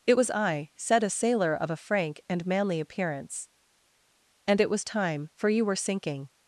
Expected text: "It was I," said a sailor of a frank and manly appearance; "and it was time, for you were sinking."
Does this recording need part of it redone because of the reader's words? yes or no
no